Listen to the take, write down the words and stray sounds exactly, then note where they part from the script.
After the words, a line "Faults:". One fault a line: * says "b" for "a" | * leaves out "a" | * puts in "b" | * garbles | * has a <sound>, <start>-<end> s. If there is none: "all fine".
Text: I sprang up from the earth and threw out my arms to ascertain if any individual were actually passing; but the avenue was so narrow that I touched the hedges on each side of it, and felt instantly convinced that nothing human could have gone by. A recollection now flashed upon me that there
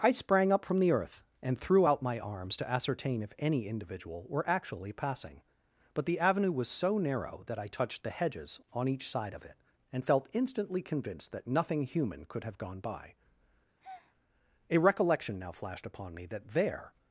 I sprang up from the earth and threw out my arms to ascertain if any individual were actually passing; but the avenue was so narrow that I touched the hedges on each side of it, and felt instantly convinced that nothing human could have gone by. A recollection now flashed upon me that there
Faults:
* has a breath, 13.8-14.2 s